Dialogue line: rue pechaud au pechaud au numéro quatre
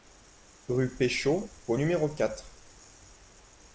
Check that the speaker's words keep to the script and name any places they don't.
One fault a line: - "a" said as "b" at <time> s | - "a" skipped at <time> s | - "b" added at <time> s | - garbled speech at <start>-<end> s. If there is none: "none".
- "pechaud au" skipped at 1.8 s